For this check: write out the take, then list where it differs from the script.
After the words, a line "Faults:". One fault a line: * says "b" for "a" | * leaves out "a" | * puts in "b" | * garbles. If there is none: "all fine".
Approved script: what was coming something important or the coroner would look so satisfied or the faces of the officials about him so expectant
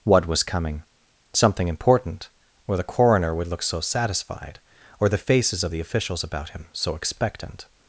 what was coming something important or the coroner would look so satisfied or the faces of the officials about him so expectant
Faults:
all fine